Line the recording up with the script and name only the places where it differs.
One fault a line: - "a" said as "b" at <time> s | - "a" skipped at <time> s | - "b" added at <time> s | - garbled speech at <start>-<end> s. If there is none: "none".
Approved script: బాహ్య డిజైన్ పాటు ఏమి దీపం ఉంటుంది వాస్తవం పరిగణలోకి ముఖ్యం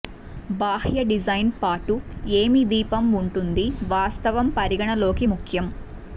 none